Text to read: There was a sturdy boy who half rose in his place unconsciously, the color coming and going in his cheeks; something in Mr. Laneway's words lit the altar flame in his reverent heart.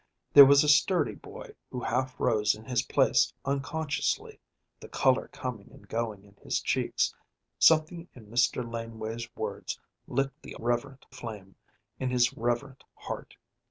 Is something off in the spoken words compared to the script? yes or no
yes